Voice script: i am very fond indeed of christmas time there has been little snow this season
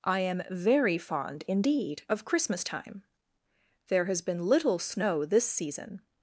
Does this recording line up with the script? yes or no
yes